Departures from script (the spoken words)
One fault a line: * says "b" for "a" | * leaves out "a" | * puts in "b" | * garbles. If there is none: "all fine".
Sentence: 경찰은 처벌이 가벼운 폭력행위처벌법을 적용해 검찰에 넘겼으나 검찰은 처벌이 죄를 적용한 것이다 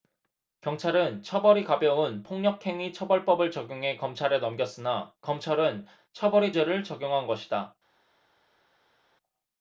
all fine